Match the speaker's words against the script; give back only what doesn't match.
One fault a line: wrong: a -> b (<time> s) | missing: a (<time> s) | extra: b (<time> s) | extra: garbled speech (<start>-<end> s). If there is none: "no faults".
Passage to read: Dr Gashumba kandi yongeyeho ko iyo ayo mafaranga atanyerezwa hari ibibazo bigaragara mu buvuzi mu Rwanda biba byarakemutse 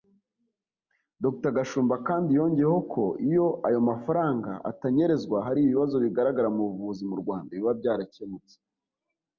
no faults